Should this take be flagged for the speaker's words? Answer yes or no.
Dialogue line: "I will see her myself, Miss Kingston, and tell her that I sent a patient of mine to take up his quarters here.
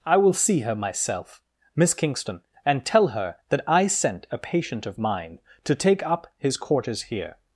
no